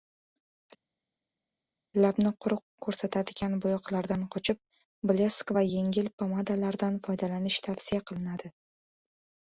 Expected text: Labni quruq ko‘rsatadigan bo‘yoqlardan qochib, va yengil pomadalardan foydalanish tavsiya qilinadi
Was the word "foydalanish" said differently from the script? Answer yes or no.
no